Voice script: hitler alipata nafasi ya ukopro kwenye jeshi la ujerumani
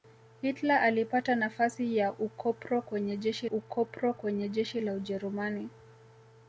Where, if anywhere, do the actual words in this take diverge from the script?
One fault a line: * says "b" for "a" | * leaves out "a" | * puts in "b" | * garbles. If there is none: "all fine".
* puts in "ukopro kwenye jeshi"